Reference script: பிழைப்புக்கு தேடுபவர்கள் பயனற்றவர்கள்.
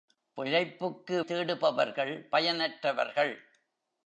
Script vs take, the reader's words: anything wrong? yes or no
no